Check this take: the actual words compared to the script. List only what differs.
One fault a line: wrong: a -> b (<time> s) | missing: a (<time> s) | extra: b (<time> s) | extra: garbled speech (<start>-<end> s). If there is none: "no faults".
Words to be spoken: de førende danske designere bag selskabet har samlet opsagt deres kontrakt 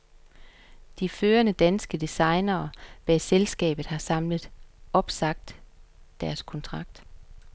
no faults